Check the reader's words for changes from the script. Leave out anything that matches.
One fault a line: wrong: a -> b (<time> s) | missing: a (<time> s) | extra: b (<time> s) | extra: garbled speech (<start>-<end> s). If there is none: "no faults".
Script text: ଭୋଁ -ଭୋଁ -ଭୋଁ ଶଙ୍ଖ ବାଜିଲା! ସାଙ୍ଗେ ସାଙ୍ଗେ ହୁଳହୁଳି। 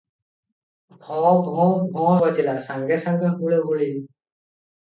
missing: ଶଙ୍ଖ (2.1 s)